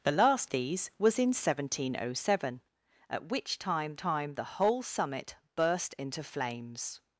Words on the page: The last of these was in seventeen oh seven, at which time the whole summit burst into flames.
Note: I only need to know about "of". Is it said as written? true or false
false